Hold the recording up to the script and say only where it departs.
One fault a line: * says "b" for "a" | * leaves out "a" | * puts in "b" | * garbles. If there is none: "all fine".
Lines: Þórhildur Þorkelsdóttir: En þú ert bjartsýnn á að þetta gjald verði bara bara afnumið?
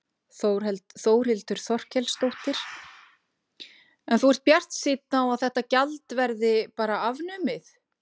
* leaves out "bara"